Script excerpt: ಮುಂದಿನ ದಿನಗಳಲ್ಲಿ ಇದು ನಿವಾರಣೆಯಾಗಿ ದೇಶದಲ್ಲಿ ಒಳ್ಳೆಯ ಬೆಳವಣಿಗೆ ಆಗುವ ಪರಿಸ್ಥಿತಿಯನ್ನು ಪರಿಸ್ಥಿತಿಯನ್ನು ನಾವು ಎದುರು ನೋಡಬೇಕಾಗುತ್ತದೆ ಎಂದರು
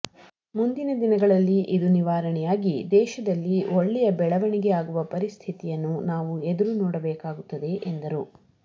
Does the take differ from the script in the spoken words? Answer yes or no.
yes